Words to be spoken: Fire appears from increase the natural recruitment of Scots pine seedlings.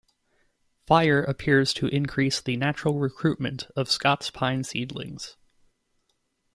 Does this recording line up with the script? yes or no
no